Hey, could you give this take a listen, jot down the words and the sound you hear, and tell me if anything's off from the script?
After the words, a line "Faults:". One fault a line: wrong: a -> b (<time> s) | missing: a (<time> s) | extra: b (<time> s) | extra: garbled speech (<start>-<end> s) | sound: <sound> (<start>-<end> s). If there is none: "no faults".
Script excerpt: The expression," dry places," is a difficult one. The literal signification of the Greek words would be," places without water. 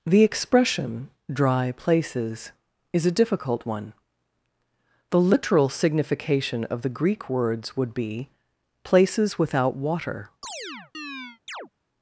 The expression," dry places," is a difficult one. The literal signification of the Greek words would be," places without water.
Faults:
sound: chirp (10.4-11.7 s)